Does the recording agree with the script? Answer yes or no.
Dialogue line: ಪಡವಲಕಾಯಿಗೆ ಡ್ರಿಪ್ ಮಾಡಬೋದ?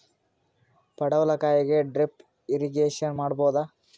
no